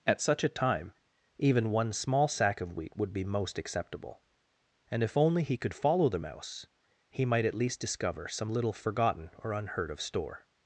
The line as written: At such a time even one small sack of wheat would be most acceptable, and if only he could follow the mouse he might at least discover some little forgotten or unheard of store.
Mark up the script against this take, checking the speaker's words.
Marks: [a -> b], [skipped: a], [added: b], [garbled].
At such a time even one small sack of wheat would be most acceptable, and if only he could follow the mouse he might at least discover some little forgotten or unheard of store.